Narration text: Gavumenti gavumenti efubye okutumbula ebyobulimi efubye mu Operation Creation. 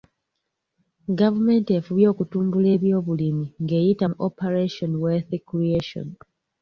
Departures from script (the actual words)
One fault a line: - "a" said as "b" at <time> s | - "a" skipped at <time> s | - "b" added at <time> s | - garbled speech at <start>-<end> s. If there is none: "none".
- "gavumenti" skipped at 1.7 s
- "efubye" said as "ng'eyita" at 3.6 s
- "Wealth" added at 5.0 s